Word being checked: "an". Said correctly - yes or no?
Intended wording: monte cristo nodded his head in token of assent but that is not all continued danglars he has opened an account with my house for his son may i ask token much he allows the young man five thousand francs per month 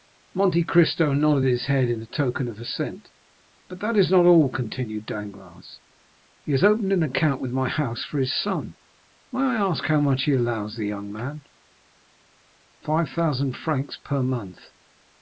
yes